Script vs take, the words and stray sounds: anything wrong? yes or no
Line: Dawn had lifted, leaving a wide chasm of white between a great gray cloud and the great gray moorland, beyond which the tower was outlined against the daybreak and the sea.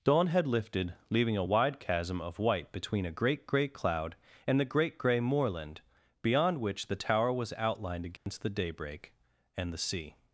yes